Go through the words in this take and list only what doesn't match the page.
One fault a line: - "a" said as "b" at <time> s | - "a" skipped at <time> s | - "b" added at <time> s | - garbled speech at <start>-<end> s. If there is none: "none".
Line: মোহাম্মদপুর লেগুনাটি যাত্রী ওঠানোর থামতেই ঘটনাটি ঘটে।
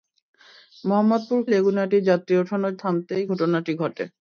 none